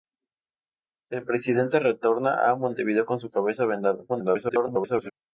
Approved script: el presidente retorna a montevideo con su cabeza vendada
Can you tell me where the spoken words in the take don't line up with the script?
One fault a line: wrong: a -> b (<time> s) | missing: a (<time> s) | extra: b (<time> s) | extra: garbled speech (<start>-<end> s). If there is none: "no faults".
extra: garbled speech (4.1-5.1 s)